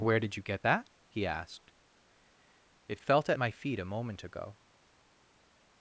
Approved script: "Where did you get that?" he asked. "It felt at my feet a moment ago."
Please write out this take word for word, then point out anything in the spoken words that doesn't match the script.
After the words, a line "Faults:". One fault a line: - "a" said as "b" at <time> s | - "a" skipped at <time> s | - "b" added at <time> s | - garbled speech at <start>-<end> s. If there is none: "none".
"Where did you get that?" he asked. "It felt at my feet a moment ago."
Faults:
none